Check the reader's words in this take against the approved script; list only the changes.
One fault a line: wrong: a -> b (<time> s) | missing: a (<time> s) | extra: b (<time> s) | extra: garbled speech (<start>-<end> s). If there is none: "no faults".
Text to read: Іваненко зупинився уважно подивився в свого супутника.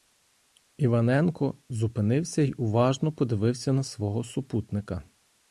extra: й (2.4 s)
wrong: в -> на (3.7 s)